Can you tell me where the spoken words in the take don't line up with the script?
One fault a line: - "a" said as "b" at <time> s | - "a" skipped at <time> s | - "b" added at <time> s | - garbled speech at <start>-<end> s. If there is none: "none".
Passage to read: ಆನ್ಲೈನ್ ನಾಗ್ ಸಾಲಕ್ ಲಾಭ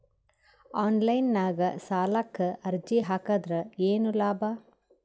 - "ಅರ್ಜಿ ಹಾಕದ್ರ ಏನು" added at 2.6 s